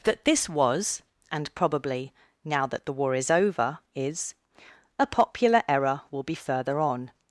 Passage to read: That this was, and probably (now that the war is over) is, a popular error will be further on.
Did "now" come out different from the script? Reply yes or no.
no